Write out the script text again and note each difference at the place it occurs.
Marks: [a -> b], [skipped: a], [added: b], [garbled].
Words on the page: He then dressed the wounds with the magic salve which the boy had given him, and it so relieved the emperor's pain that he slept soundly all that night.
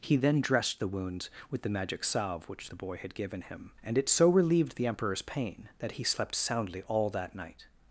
He then dressed the wounds with the magic salve which the boy had given him, and it so relieved the emperor's pain that he slept soundly all that night.